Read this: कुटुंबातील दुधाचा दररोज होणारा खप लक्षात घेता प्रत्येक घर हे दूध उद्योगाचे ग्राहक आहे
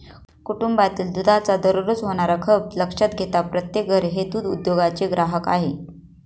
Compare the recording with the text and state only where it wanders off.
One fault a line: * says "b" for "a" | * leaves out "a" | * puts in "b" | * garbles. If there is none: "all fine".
all fine